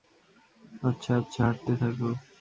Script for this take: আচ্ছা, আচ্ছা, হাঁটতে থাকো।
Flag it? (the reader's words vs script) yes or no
no